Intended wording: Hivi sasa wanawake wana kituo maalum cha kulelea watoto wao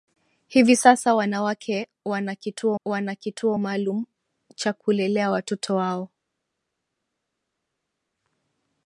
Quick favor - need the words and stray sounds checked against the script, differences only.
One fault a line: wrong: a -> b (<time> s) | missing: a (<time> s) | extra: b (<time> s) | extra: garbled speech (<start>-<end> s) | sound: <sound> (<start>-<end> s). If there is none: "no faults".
extra: wana kituo (2.9 s)